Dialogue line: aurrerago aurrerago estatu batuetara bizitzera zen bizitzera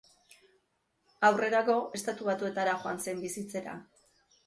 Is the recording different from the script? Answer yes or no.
yes